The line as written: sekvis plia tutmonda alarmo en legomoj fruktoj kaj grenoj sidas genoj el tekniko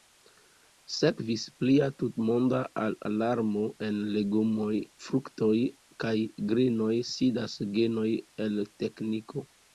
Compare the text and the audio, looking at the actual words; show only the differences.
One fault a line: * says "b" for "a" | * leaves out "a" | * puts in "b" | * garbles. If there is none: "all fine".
all fine